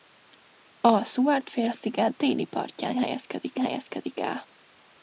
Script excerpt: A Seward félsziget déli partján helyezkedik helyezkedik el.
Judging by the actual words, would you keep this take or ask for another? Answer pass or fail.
pass